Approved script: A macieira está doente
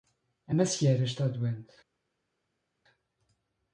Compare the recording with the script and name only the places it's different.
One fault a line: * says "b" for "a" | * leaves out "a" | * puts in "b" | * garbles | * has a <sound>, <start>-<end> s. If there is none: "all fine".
all fine